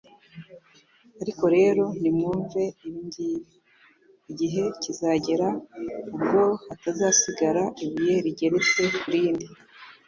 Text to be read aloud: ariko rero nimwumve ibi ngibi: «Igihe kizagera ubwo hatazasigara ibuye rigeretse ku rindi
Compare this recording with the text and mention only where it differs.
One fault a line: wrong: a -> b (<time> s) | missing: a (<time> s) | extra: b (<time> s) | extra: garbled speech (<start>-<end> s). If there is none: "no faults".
no faults